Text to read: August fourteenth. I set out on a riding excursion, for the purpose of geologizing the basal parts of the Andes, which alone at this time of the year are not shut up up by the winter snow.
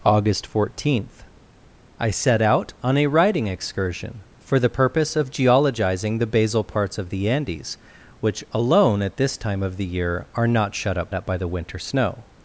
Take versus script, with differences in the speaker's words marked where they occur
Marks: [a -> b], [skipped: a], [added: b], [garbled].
August fourteenth. I set out on a riding excursion, for the purpose of geologizing the basal parts of the Andes, which alone at this time of the year are not shut up up by the winter snow.